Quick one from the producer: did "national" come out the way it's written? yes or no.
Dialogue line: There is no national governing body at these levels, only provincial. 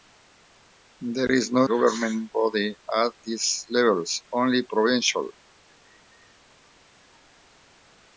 no